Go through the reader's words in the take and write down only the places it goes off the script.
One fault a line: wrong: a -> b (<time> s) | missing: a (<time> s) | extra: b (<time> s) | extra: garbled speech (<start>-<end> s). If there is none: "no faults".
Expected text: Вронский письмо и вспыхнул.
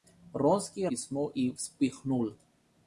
no faults